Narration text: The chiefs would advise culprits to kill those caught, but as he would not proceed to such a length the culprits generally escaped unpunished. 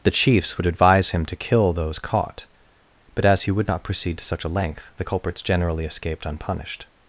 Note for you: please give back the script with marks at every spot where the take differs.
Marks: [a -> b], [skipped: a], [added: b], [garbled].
The chiefs would advise [culprits -> him] to kill those caught, but as he would not proceed to such a length the culprits generally escaped unpunished.